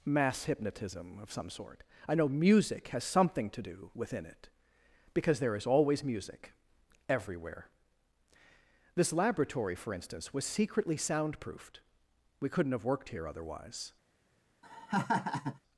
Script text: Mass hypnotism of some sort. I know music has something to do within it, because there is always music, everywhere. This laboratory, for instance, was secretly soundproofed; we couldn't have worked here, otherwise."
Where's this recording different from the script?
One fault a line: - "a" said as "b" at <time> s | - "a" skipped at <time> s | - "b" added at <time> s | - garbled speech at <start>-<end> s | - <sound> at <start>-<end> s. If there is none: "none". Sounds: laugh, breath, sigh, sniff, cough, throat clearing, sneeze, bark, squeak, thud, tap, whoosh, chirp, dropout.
- laugh at 14.6-15.6 s